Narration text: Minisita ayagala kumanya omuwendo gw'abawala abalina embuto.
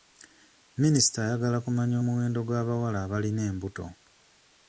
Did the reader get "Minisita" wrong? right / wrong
right